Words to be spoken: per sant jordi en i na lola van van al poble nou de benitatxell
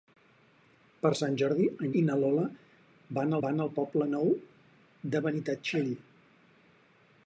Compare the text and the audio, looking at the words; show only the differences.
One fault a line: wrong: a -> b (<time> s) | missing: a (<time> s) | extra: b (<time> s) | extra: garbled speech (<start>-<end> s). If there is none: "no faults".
no faults